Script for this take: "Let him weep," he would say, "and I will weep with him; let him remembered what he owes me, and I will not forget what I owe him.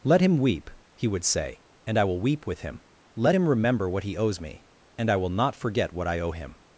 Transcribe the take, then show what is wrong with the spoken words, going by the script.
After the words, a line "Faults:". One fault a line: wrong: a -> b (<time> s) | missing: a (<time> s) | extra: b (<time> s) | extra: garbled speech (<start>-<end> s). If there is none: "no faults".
"Let him weep," he would say, "and I will weep with him; let him remember what he owes me, and I will not forget what I owe him.
Faults:
wrong: remembered -> remember (3.5 s)